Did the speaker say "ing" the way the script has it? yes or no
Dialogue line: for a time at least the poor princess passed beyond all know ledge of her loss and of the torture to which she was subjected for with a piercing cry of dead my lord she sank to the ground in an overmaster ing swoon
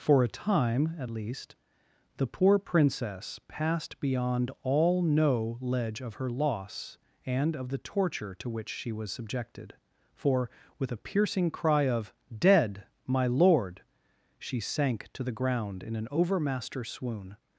no